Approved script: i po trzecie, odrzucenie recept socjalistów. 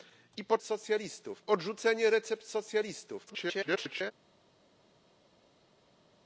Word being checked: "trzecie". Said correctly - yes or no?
no